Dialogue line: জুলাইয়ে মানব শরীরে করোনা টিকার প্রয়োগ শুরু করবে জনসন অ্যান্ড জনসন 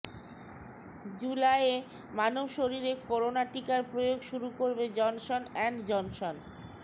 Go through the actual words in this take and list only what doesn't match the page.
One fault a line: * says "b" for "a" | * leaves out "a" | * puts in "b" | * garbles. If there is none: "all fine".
all fine